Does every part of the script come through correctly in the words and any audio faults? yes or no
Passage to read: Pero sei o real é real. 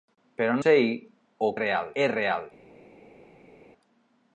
yes